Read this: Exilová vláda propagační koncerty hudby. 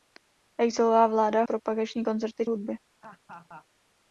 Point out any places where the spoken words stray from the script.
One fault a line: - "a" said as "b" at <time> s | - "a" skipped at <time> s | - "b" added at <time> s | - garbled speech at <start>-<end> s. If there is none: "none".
none